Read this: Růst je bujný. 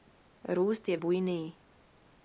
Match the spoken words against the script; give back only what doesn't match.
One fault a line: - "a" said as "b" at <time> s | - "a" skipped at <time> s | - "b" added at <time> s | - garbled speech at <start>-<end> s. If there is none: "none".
none